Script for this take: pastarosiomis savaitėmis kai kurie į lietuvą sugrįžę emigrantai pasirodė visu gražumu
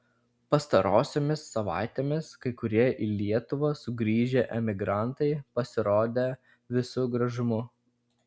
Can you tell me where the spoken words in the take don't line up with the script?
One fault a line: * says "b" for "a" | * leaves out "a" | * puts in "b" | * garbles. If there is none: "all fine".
all fine